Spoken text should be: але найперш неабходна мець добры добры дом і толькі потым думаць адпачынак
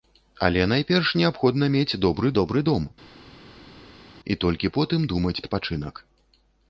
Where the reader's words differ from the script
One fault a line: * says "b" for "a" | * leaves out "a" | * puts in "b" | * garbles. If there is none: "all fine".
all fine